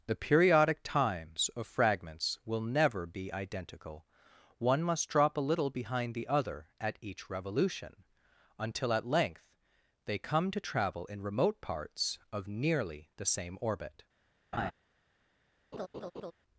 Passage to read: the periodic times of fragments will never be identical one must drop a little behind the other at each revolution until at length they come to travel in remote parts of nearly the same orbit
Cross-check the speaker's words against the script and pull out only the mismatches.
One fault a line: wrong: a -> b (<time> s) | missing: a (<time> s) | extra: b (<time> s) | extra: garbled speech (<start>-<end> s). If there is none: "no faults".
no faults